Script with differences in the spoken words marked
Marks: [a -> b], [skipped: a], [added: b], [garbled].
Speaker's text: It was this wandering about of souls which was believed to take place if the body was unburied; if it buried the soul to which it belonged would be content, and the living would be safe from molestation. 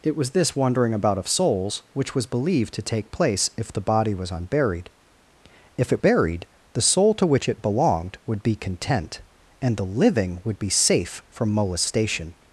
It was this wandering about of souls which was believed to take place if the body was unburied; if it buried the soul to which it belonged would be content, and the living would be safe from molestation.